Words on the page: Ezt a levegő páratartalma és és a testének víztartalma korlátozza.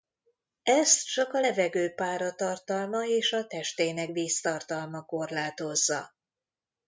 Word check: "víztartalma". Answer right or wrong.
right